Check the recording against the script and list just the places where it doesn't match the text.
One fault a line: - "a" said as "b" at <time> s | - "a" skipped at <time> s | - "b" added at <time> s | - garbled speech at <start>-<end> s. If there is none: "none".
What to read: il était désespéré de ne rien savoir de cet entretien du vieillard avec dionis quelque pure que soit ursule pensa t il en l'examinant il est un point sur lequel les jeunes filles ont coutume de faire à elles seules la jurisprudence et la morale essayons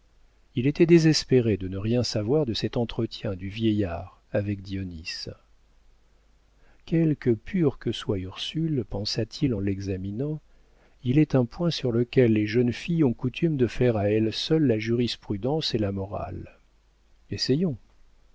none